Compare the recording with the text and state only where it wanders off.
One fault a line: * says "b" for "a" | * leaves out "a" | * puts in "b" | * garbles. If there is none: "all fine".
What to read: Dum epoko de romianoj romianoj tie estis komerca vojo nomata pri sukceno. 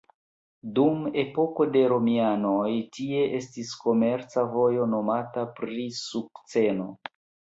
* leaves out "romianoj"